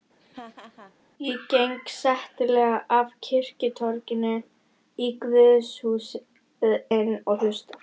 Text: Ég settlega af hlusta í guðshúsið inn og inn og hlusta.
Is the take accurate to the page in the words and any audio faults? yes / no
no